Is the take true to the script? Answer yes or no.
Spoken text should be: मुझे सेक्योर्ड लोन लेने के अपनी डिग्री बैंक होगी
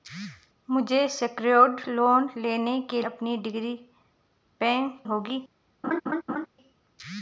yes